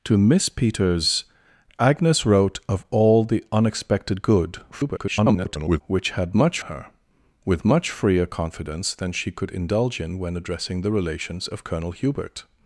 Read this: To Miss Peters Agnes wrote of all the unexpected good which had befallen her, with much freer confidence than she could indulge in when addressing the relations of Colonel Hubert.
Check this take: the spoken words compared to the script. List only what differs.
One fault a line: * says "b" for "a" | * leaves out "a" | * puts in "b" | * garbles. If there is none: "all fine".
* garbles
* says "much" for "befallen"